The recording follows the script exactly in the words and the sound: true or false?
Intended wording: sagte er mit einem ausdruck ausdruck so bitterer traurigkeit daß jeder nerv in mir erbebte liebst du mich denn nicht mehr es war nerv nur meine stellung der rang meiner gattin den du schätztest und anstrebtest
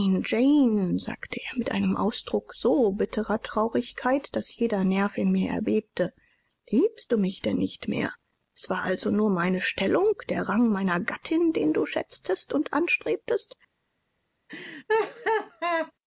false